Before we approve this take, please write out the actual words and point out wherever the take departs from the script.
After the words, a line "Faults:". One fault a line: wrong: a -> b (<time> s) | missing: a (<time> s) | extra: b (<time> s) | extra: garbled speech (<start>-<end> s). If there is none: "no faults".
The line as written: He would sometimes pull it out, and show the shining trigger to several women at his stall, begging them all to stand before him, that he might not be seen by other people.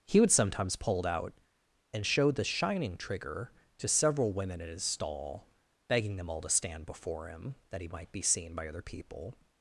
He would sometimes pull it out, and show the shining trigger to several women at his stall, begging them all to stand before him, that he might be seen by other people.
Faults:
missing: not (8.1 s)